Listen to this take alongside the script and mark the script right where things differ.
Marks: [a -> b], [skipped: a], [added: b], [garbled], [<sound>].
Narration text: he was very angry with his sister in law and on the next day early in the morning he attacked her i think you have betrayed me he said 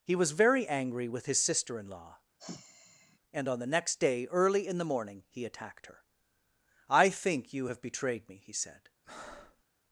he was very angry with his sister in law [sigh] and on the next day early in the morning he attacked her i think you have betrayed me he said [breath]